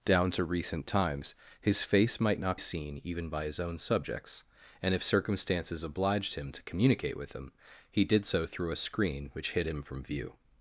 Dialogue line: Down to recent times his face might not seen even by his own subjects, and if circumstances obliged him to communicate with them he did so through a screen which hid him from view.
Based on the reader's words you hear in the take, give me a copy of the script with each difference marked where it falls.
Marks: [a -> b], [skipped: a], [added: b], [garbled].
Down to recent times his face might not seen even by his own subjects, and if circumstances obliged him to communicate with them he did so through a screen which hid him from view.